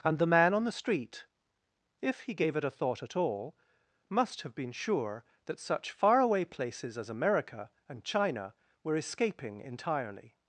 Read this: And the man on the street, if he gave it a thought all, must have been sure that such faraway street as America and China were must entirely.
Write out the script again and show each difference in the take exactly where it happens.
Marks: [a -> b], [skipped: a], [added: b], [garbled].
And the man on the street, if he gave it a thought [added: at] all, must have been sure that such faraway [street -> places] as America and China were [must -> escaping] entirely.